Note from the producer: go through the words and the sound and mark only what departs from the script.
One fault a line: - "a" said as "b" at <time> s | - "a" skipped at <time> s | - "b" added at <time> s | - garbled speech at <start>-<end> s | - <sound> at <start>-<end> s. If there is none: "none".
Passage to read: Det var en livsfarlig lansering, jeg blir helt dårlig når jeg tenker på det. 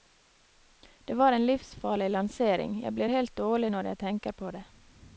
none